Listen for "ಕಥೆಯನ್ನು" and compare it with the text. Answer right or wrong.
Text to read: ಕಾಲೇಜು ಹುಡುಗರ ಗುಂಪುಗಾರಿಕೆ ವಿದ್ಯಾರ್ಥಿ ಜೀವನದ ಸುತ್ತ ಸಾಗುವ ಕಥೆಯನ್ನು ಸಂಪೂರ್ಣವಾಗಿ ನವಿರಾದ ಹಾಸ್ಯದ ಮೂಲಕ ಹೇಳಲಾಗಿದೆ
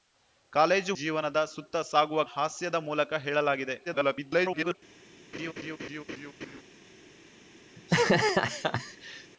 wrong